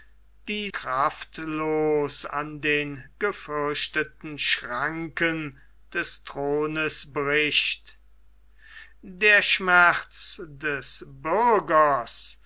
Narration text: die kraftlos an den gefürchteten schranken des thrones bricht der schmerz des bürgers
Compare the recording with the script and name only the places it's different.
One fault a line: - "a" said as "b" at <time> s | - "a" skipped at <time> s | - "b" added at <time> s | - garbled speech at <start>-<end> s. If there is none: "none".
none